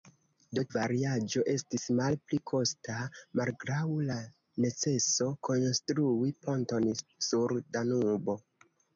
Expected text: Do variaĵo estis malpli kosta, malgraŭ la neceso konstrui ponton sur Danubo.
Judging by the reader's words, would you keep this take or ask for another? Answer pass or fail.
pass